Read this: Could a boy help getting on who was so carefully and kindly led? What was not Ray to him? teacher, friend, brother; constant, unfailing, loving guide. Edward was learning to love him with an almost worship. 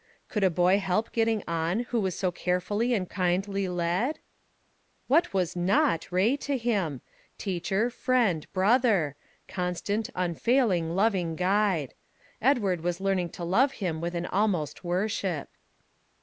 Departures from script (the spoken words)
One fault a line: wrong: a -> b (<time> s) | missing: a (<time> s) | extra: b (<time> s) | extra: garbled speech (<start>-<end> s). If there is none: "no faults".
no faults